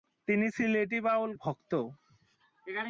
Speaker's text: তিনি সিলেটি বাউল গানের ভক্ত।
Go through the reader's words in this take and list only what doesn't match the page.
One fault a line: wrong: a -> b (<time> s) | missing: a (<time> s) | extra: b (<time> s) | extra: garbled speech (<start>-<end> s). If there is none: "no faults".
missing: গানের (1.3 s)